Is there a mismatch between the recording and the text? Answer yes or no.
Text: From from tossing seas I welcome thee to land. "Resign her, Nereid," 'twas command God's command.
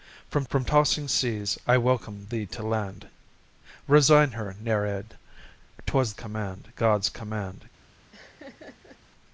no